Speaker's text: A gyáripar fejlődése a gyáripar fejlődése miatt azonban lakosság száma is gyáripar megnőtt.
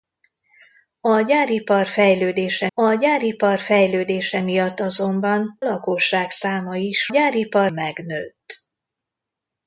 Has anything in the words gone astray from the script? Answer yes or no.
no